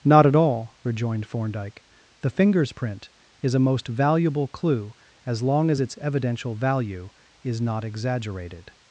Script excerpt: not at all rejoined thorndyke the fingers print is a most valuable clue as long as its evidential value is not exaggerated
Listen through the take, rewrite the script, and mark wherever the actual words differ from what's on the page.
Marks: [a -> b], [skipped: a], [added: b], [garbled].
not at all rejoined thorndyke the fingers print is a most valuable clue as long as its evidential value is not exaggerated